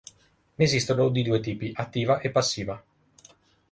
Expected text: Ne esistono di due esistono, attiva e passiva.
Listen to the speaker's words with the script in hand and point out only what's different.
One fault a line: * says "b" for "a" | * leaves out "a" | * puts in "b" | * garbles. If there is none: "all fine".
* says "tipi" for "esistono"